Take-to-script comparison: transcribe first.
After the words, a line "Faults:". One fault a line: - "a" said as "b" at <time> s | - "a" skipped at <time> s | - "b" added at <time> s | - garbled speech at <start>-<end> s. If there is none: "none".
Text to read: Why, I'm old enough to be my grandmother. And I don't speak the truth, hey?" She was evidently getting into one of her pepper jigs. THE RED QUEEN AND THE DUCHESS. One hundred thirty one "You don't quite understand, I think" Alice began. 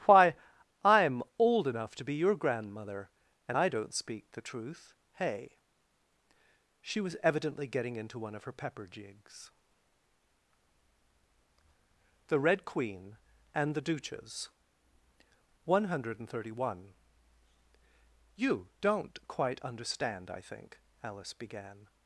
Why, I'm old enough to be your grandmother. And I don't speak the truth, hey?" She was evidently getting into one of her pepper jigs. THE RED QUEEN AND THE DUCHESS. One hundred thirty one "You don't quite understand, I think" Alice began.
Faults:
- "my" said as "your" at 2.1 s